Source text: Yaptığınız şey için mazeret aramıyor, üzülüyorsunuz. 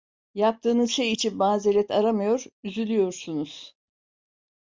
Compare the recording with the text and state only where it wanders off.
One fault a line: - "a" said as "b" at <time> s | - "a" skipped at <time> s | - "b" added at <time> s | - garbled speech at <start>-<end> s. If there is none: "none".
none